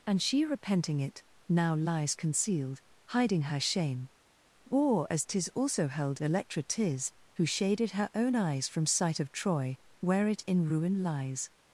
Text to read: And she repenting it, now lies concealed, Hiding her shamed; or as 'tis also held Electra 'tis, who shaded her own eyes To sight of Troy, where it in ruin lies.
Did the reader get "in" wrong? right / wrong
right